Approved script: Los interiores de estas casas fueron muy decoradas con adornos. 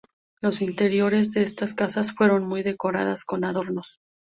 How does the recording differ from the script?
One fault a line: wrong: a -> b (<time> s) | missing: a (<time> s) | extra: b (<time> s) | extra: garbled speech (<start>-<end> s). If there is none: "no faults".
no faults